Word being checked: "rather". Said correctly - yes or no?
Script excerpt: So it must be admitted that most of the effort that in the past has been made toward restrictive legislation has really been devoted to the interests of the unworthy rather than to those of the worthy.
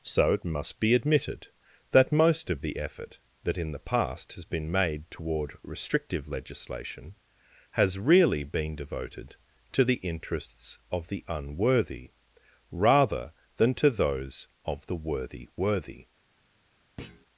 yes